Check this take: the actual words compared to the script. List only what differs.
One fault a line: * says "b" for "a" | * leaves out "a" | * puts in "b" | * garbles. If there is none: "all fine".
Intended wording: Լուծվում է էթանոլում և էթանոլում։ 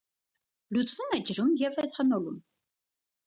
* says "ջրում" for "էթանոլում"